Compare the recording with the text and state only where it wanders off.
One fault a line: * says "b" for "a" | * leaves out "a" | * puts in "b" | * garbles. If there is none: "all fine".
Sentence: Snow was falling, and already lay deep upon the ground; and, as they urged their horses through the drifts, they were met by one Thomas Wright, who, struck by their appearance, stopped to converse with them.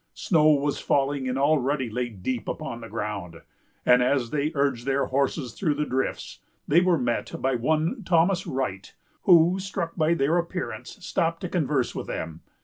all fine